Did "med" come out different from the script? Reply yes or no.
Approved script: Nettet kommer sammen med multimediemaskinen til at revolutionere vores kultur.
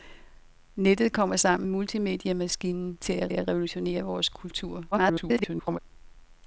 yes